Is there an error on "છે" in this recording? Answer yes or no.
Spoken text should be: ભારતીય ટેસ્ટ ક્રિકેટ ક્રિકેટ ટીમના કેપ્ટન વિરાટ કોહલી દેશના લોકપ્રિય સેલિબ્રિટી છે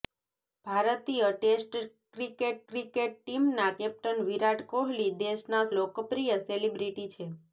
no